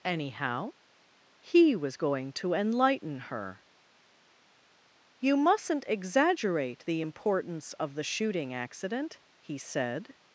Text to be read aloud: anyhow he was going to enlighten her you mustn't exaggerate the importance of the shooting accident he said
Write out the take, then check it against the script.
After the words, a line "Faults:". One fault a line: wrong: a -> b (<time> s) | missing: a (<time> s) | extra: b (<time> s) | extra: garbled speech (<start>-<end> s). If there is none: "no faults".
anyhow he was going to enlighten her you mustn't exaggerate the importance of the shooting accident he said
Faults:
no faults